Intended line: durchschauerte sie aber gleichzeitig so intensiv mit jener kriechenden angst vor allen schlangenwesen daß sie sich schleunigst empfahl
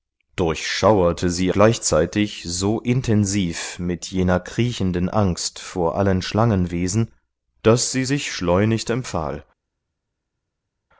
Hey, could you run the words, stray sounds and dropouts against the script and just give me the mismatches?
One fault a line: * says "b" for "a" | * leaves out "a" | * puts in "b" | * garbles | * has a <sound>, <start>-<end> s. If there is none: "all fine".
* leaves out "aber"